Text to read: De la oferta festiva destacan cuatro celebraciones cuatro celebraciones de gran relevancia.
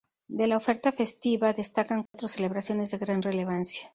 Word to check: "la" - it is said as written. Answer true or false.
true